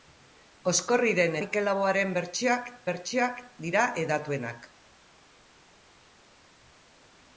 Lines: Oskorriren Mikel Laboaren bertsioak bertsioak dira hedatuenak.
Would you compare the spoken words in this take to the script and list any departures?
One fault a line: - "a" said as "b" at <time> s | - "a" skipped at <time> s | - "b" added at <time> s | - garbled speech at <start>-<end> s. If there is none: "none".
none